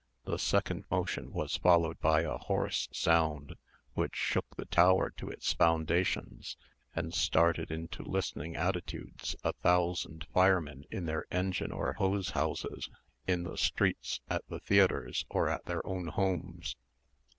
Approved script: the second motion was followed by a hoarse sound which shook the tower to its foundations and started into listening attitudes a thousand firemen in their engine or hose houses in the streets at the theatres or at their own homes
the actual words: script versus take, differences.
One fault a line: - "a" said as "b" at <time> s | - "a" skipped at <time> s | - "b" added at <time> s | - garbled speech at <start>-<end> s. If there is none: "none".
none